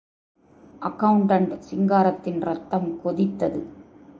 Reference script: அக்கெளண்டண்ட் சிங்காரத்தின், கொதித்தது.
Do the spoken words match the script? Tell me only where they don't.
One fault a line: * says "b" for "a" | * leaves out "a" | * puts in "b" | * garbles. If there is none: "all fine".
* puts in "ரத்தம்"